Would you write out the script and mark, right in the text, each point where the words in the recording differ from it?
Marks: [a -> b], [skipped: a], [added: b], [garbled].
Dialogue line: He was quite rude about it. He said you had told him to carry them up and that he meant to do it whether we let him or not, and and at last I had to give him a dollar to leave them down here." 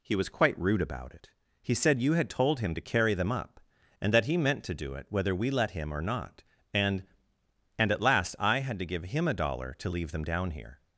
He was quite rude about it. He said you had told him to carry them up and that he meant to do it whether we let him or not, and and at last I had to give him a dollar to leave them down here."